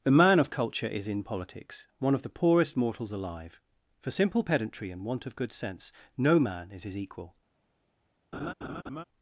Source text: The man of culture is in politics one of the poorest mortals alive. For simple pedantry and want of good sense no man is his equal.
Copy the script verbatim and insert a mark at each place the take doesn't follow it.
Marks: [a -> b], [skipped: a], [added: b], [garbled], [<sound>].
The man of culture is in politics one of the poorest mortals alive. For simple pedantry and want of good sense no man is his equal. [laugh]